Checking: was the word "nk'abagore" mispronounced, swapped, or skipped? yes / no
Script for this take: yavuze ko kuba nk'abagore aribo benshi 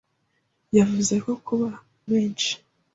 yes